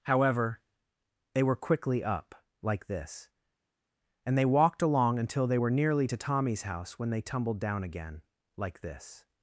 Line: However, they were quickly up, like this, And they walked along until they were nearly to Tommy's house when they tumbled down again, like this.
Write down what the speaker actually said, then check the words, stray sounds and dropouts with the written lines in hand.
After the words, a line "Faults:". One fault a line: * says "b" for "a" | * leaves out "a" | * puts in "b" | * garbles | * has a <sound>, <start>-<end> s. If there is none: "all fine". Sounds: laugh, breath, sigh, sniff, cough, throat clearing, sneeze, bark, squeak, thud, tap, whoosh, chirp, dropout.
However, they were quickly up, like this, And they walked along until they were nearly to Tommy's house when they tumbled down again, like this.
Faults:
all fine